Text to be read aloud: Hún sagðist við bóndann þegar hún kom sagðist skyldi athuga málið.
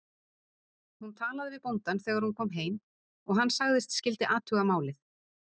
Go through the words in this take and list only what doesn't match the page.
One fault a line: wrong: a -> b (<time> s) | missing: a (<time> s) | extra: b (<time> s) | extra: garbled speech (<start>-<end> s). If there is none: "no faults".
wrong: sagðist -> talaði (1.2 s)
extra: heim og hann (2.6 s)